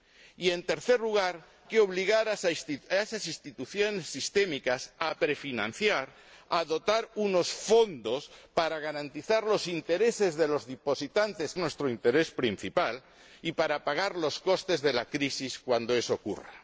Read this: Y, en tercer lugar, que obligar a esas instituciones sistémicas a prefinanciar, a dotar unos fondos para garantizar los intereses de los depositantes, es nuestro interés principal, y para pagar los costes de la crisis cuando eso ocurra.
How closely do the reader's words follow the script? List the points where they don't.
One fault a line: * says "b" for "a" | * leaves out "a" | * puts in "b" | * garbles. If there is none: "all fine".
all fine